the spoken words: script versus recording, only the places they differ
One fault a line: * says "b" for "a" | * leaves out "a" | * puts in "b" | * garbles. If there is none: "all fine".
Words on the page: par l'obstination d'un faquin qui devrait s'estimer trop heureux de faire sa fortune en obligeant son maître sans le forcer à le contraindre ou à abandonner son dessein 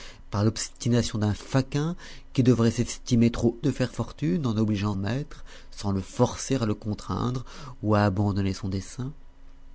* leaves out "heureux"
* leaves out "sa"
* leaves out "son"